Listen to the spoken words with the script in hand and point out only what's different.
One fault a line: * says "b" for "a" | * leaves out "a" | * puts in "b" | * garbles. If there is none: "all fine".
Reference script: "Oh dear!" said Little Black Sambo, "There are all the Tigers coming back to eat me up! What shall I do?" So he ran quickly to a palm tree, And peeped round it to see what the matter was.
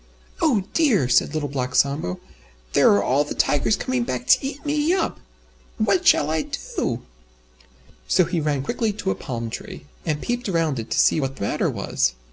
all fine